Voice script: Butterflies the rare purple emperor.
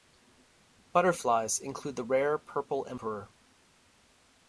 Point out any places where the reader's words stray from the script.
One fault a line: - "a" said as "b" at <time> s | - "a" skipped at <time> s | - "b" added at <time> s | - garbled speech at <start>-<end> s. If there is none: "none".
- "include" added at 1.6 s